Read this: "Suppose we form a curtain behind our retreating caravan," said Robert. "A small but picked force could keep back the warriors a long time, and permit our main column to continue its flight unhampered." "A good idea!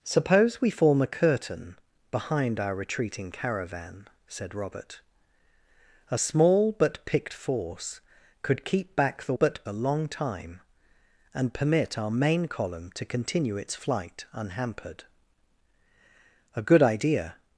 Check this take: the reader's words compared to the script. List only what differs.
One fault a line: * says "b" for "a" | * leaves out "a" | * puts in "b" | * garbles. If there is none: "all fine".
* says "but" for "warriors"